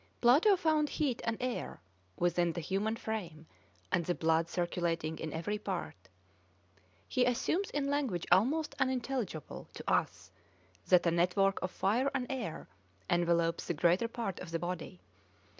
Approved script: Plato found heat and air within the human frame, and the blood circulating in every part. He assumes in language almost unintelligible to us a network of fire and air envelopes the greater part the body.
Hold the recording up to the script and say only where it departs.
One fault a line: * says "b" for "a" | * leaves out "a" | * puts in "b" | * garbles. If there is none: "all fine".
* puts in "that"
* puts in "of"